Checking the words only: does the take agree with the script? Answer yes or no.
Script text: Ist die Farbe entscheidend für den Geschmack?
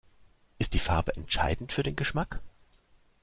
yes